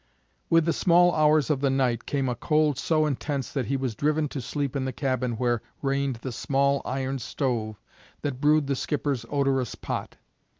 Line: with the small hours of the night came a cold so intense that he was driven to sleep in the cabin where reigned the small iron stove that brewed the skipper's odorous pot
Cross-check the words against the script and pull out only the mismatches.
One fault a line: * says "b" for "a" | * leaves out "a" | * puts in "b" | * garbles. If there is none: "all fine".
all fine